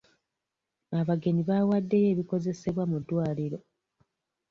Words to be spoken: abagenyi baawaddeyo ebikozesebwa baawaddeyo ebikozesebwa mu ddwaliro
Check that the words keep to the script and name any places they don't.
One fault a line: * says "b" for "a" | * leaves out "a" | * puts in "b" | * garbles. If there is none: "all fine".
* leaves out "baawaddeyo ebikozesebwa"